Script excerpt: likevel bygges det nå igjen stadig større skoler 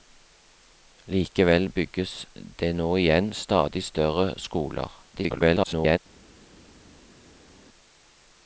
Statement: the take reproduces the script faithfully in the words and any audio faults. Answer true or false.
false